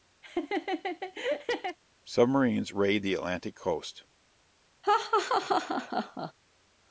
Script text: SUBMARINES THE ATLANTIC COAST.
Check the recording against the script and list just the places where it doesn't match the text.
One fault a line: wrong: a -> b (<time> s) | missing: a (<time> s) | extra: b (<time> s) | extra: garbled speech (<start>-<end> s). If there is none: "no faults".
extra: RAID (2.7 s)